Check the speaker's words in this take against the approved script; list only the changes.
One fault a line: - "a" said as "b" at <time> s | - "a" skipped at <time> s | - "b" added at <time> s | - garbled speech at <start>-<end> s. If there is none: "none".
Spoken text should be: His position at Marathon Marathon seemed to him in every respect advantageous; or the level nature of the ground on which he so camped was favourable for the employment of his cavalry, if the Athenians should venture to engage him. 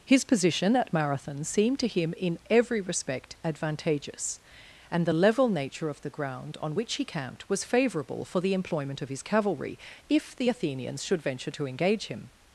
- "Marathon" skipped at 1.4 s
- "or" said as "and" at 4.9 s
- "so" skipped at 7.0 s